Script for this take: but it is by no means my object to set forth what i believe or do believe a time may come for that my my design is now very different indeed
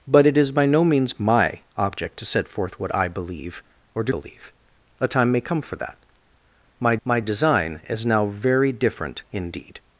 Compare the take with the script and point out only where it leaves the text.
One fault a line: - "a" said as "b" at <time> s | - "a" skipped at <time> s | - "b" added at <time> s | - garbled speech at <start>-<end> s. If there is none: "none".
none